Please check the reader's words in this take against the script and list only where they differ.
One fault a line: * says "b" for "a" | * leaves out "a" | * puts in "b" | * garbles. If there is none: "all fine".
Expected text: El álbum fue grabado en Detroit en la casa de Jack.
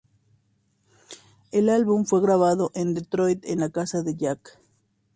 all fine